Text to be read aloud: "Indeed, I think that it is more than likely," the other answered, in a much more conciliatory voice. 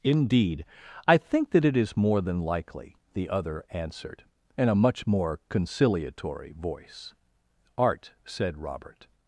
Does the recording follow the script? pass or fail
fail